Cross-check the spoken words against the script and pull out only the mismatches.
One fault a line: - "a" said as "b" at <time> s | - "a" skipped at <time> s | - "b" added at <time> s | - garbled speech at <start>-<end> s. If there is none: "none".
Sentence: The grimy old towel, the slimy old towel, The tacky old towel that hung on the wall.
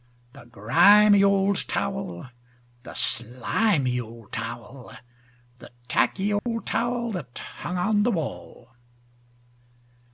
none